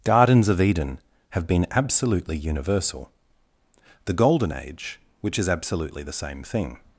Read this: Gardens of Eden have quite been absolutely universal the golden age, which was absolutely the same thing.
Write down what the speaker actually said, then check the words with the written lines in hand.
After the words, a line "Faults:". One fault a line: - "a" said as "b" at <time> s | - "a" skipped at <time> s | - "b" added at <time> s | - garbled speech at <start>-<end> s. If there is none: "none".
Gardens of Eden have been absolutely universal the golden age, which is absolutely the same thing.
Faults:
- "quite" skipped at 1.4 s
- "was" said as "is" at 5.4 s